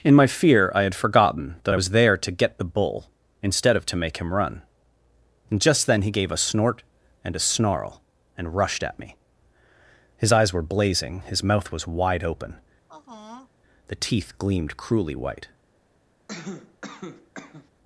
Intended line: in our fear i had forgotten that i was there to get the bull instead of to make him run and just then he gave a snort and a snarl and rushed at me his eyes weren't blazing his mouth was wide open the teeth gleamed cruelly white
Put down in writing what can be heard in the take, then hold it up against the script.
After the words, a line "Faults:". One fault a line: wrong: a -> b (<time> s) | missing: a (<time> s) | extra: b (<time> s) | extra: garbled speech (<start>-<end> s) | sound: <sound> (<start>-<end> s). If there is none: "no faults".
in my fear i had forgotten that i was there to get the bull instead of to make him run and just then he gave a snort and a snarl and rushed at me his eyes were blazing his mouth was wide open the teeth gleamed cruelly white
Faults:
wrong: our -> my (0.1 s)
wrong: weren't -> were (10.5 s)
sound: sigh (12.9-13.5 s)
sound: cough (16.3-17.7 s)